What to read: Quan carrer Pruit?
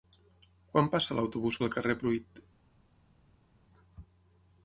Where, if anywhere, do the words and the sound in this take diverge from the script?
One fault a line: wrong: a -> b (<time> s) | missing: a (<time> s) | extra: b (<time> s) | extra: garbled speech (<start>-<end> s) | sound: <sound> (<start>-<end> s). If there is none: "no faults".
extra: passa l'autobús pel (0.9 s)